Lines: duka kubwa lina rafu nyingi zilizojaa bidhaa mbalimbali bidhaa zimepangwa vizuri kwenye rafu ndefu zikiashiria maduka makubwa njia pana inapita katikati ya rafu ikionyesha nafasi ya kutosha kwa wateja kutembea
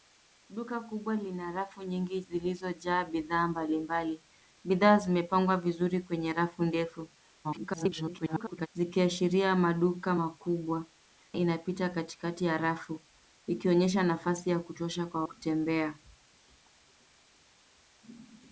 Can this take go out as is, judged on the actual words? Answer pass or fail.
fail